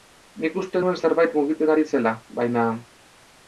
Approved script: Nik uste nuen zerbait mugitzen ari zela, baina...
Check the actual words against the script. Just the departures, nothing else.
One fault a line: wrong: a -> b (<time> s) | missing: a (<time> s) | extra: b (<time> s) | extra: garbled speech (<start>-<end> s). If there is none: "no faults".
no faults